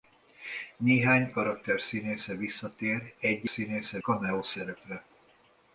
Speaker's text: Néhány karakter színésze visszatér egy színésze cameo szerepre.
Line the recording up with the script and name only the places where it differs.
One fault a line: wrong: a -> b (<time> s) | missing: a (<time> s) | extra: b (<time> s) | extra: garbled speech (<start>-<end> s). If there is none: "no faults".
no faults